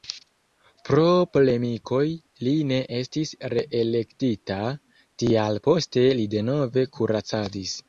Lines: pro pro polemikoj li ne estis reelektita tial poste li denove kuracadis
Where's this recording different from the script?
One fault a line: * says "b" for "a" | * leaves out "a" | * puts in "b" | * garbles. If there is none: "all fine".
* leaves out "pro"